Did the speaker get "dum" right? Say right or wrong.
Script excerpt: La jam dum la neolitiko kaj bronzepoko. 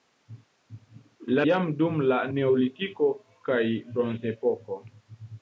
right